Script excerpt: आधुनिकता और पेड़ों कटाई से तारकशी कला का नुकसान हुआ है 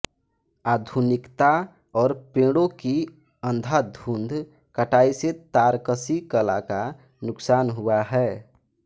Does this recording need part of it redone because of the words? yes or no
yes